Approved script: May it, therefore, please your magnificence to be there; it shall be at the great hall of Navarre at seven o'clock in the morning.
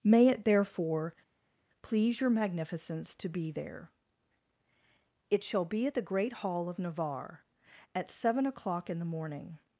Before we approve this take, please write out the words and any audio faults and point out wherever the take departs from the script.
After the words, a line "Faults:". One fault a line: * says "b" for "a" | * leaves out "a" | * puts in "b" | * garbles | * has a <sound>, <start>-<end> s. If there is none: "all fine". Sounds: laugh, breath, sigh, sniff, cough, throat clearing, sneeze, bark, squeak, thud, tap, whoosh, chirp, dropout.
May it, therefore, please your magnificence to be there; it shall be at the great hall of Navarre at seven o'clock in the morning.
Faults:
all fine